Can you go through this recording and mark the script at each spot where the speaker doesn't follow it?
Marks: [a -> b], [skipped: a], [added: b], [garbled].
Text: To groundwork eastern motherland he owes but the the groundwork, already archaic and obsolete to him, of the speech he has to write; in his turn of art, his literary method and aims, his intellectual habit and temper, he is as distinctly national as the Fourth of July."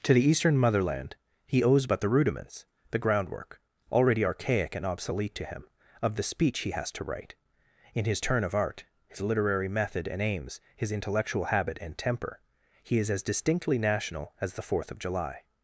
To [groundwork -> the] eastern motherland he owes but the [added: rudiments] the groundwork, already archaic and obsolete to him, of the speech he has to write; in his turn of art, his literary method and aims, his intellectual habit and temper, he is as distinctly national as the Fourth of July."